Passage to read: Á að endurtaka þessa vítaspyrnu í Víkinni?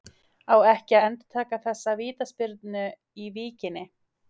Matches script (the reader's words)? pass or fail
fail